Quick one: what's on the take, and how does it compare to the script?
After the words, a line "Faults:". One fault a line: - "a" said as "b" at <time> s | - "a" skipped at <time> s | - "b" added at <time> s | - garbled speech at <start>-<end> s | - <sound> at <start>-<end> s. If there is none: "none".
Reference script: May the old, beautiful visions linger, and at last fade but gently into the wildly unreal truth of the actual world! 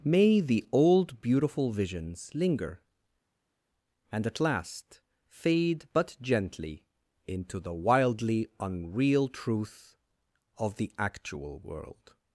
May the old, beautiful visions linger, and at last fade but gently into the wildly unreal truth of the actual world!
Faults:
none